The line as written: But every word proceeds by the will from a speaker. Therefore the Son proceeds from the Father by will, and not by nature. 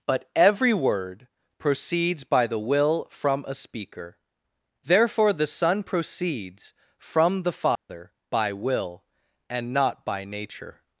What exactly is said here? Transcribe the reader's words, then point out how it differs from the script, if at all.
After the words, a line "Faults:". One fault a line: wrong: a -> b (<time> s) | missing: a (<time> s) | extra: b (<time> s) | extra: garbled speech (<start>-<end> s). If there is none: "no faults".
But every word proceeds by the will from a speaker. Therefore the Son proceeds from the Father by will, and not by nature.
Faults:
no faults